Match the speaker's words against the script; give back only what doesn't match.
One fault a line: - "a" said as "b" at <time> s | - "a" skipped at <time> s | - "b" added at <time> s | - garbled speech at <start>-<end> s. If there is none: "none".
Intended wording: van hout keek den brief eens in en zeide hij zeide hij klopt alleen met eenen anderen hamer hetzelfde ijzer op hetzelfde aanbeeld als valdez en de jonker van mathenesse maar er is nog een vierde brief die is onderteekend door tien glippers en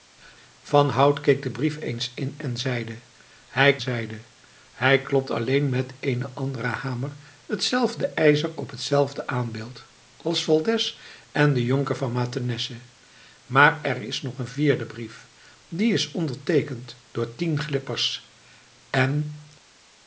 none